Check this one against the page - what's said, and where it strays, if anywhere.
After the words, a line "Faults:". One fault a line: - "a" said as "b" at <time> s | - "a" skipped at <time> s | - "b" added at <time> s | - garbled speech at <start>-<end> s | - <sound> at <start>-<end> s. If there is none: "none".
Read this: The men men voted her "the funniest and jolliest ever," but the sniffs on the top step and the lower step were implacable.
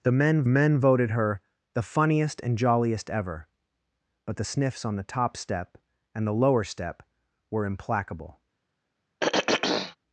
The men men voted her "the funniest and jolliest ever," but the sniffs on the top step and the lower step were implacable.
Faults:
- throat clearing at 9.2-10.0 s